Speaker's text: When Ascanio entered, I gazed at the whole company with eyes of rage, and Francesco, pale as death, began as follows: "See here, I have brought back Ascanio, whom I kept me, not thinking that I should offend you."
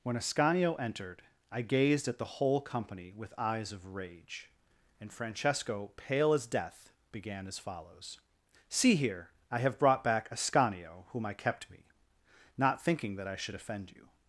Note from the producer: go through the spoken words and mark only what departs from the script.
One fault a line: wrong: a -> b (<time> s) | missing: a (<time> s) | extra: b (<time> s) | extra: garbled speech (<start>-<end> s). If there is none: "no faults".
no faults